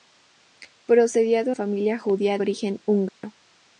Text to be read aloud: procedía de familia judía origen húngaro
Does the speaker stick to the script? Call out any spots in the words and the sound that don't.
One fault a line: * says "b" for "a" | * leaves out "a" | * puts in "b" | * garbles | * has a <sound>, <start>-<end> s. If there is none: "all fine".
* has a dropout, 3.1-3.2 s